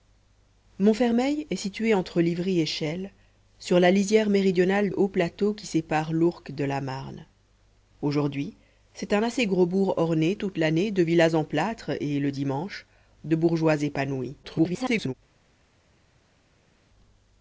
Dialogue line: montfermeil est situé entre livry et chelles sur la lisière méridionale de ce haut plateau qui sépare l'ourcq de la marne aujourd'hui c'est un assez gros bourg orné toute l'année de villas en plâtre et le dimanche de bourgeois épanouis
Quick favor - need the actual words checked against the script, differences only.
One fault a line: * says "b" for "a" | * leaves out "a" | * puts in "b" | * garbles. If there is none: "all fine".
* leaves out "de ce"
* garbles